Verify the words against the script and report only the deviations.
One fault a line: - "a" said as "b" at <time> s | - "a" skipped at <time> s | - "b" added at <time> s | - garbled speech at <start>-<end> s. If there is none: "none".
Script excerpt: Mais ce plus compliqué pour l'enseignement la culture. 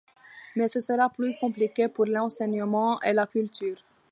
- "sera" added at 0.8 s
- "et" added at 3.0 s